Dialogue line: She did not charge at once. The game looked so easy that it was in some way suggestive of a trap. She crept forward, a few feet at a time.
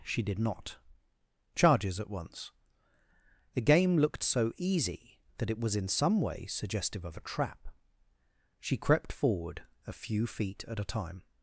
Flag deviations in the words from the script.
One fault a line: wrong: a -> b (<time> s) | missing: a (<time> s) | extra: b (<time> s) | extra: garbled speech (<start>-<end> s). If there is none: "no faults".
wrong: charge -> charges (1.6 s)